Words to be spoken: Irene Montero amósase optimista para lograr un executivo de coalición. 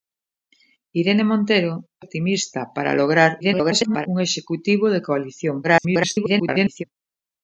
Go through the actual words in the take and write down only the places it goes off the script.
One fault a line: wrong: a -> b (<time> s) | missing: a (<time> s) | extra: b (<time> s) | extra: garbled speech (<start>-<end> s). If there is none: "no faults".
missing: amósase (1.7 s)
extra: garbled speech (3.4-4.1 s)
extra: garbled speech (5.6-6.8 s)